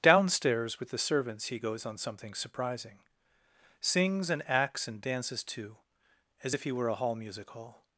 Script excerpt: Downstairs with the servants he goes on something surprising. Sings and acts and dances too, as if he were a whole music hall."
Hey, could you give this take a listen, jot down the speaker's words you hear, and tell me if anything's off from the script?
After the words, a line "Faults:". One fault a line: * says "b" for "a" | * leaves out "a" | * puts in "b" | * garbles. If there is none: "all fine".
Downstairs with the servants he goes on something surprising. Sings and acts and dances too, as if he were a hall music hall."
Faults:
* says "hall" for "whole"